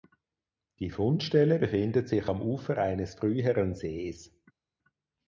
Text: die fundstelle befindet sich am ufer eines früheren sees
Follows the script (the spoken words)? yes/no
yes